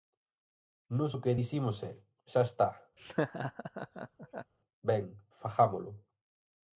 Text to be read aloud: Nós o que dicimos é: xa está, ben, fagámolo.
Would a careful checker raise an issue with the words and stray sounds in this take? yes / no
yes